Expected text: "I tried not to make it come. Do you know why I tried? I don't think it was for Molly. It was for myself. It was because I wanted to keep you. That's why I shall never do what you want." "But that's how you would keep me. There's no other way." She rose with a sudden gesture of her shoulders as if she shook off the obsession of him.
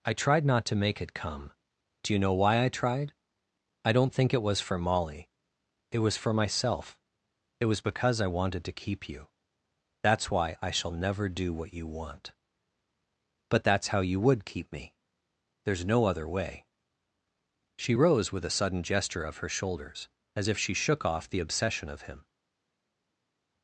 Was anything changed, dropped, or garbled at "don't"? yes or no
no